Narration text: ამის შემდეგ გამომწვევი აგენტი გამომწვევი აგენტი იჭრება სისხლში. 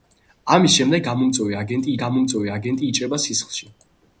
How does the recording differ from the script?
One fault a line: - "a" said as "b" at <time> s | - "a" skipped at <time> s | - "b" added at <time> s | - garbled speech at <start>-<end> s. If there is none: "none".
none